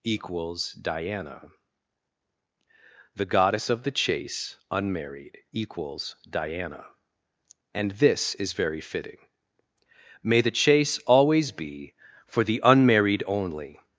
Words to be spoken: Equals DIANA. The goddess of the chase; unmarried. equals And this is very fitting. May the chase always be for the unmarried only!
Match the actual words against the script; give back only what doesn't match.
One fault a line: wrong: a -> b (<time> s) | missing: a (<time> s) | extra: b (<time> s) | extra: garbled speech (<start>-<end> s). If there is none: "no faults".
extra: diana (6.3 s)